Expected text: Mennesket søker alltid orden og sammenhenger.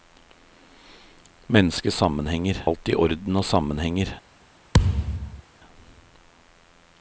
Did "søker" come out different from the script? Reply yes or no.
yes